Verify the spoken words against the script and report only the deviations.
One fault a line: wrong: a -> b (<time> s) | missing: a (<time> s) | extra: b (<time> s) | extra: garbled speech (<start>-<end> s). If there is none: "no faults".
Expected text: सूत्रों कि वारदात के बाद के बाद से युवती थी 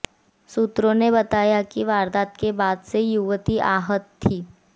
extra: ने बताया (0.9 s)
missing: के बाद (2.8 s)
extra: आहत (3.7 s)